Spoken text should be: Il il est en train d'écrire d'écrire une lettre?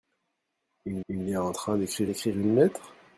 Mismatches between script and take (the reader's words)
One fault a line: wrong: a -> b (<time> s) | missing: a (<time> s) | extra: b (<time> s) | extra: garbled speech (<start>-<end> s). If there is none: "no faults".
no faults